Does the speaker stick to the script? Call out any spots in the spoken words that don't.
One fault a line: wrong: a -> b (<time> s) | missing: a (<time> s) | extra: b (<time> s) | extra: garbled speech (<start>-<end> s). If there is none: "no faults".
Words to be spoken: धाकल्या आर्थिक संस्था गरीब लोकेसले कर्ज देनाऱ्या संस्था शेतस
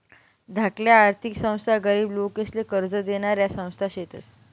no faults